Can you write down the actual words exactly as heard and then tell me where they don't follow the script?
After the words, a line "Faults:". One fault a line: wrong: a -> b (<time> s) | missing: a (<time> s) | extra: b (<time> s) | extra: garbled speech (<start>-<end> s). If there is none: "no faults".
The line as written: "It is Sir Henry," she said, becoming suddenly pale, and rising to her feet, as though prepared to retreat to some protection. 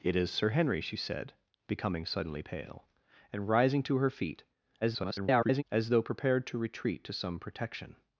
"It is Sir Henry," she said, becoming suddenly pale, and rising to her feet, [garbled] as though prepared to retreat to some protection.
Faults:
extra: garbled speech (4.8-5.6 s)